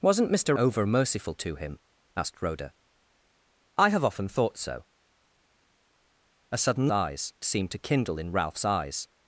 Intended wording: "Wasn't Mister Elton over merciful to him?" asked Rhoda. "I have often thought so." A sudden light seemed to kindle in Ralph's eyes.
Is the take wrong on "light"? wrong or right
wrong